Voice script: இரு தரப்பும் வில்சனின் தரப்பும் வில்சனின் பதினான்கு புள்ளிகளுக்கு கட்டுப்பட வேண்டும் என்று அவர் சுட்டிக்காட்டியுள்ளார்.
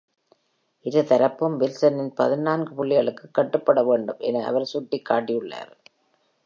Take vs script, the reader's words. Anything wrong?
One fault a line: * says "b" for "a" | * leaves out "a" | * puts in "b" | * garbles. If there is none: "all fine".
* leaves out "தரப்பும் வில்சனின்"
* says "என" for "என்று"